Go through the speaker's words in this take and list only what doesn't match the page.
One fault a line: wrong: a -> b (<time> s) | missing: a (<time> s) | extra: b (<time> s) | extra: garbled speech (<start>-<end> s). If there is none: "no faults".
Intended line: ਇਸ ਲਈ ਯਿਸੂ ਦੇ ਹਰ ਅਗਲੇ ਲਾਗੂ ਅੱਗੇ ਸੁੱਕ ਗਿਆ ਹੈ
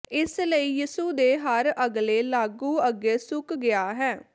no faults